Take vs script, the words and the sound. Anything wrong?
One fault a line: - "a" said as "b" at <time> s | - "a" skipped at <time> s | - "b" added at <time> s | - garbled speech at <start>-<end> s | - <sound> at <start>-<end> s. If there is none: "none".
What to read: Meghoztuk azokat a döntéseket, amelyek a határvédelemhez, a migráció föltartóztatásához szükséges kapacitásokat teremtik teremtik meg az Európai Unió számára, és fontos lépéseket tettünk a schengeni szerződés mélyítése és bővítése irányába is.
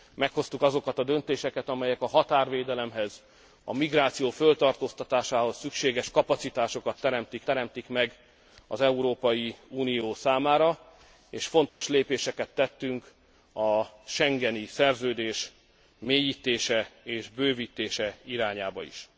- dropout at 11.7-11.8 s